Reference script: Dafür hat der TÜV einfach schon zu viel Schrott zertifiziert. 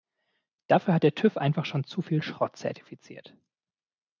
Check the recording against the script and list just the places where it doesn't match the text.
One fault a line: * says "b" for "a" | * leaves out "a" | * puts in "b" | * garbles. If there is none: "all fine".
all fine